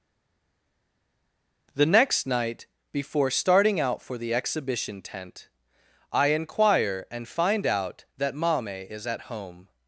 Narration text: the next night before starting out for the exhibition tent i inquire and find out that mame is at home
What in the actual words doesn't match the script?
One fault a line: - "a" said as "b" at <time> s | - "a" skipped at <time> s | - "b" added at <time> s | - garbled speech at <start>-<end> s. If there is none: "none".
none